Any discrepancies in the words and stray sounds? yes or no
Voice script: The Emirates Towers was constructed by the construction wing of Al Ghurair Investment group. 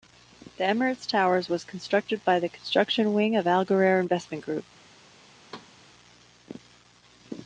yes